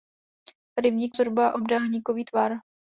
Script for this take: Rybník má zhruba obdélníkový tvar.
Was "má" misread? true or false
true